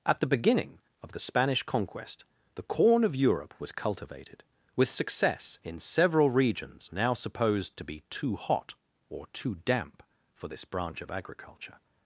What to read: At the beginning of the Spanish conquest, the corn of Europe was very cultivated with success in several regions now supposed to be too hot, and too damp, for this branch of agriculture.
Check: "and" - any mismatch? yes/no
yes